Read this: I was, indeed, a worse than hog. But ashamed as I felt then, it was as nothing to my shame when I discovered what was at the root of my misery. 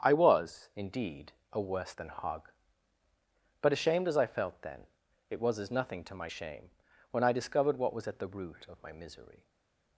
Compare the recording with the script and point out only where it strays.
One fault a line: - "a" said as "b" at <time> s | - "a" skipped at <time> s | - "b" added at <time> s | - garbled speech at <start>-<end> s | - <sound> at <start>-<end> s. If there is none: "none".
none